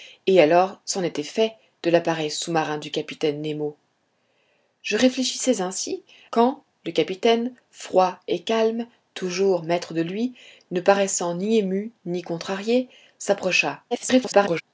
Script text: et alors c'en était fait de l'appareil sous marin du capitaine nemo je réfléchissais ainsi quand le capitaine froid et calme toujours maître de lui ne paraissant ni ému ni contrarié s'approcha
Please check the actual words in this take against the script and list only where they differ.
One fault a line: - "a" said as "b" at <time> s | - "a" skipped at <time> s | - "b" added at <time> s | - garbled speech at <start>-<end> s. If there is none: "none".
- garbled speech at 13.9-14.6 s